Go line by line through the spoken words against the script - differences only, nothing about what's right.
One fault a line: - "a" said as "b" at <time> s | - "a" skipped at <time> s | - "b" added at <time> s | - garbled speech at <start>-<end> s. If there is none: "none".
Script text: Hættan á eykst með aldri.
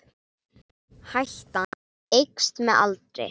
none